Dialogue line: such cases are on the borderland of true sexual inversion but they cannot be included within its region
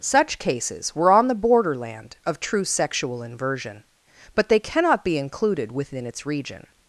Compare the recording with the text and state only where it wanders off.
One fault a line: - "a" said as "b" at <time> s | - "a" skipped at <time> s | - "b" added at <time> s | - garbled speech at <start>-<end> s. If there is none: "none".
- "are" said as "were" at 0.9 s